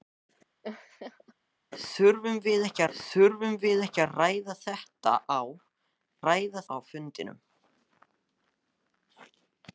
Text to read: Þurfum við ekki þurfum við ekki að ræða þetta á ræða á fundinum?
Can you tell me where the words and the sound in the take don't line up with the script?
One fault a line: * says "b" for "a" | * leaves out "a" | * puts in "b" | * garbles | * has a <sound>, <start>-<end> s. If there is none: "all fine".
* has a laugh, 0.6-1.3 s